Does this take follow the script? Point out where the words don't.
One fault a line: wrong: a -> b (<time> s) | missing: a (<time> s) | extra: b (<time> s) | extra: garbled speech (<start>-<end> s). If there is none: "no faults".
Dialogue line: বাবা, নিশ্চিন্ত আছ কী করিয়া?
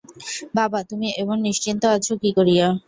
extra: তুমি এমন (0.9 s)